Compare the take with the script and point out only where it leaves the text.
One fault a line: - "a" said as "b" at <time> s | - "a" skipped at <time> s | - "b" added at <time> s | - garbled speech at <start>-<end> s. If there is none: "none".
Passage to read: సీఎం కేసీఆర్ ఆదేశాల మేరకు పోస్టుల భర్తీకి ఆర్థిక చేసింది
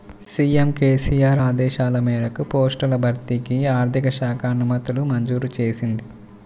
- "శాఖ అనుమతులు మంజూరు" added at 4.2 s